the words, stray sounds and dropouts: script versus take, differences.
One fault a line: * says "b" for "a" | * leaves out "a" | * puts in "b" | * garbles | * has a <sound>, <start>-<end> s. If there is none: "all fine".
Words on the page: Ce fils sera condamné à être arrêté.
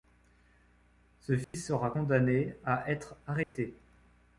* has a dropout, 1.4-1.5 s
* has a dropout, 3.4-3.6 s